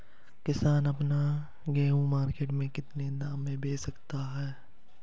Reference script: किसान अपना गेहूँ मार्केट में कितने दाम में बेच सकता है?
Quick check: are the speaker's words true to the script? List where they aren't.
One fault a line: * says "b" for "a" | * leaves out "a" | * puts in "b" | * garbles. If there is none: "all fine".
all fine